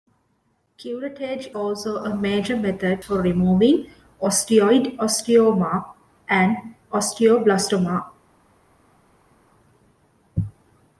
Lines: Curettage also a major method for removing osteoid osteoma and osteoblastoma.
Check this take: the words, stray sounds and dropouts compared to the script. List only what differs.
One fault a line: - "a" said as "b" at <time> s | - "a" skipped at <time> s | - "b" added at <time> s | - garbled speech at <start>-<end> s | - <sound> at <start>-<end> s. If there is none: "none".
none